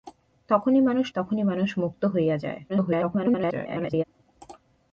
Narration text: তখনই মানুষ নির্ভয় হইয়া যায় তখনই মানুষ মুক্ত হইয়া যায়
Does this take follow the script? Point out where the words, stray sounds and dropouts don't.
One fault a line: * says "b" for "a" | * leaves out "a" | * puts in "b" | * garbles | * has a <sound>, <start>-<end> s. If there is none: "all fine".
* leaves out "নির্ভয় হইয়া যায়"
* garbles